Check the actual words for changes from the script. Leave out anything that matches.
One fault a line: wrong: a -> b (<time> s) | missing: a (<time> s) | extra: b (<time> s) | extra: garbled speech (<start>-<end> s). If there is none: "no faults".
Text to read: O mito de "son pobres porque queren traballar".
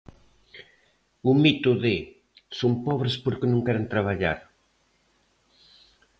extra: non (3.5 s)